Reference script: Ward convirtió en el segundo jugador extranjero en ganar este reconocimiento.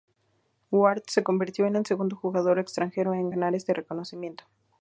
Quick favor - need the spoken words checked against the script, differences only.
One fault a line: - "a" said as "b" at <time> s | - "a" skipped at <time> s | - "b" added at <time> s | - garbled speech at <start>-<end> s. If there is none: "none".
- "se" added at 1.1 s